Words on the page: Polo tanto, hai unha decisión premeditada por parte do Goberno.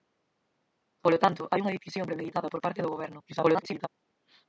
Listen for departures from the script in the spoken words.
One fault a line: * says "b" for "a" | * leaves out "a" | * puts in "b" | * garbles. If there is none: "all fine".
* garbles